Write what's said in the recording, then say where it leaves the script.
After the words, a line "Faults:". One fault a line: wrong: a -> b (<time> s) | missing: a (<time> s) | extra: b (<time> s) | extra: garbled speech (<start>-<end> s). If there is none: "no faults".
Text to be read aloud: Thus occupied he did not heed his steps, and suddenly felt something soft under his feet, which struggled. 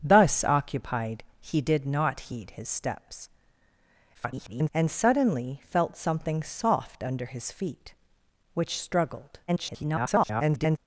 Thus occupied he did not heed his steps, [garbled] and suddenly felt something soft under his feet, which struggled. [garbled]
Faults:
extra: garbled speech (4.1-4.7 s)
extra: garbled speech (9.5-10.8 s)